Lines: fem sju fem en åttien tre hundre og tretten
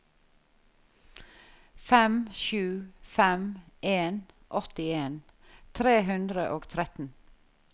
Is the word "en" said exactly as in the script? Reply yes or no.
yes